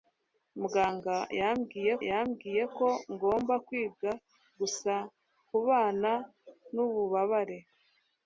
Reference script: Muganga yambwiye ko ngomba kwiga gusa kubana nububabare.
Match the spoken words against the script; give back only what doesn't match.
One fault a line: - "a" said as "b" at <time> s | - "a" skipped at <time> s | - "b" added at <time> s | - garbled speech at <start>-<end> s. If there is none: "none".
- "yambwiye" added at 2.1 s